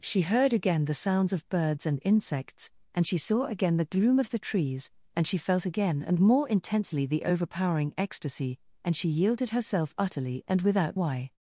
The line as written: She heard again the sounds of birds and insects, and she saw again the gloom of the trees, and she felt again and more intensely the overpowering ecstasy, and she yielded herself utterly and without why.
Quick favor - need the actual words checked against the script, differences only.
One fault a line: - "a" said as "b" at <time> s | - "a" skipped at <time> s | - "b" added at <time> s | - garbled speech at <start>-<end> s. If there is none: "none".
none